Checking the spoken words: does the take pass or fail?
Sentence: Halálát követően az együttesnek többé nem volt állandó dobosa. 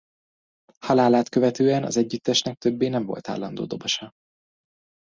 pass